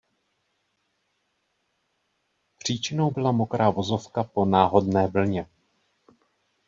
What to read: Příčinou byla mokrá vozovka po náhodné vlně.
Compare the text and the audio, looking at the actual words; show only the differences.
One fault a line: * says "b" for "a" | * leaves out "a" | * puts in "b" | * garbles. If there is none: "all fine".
all fine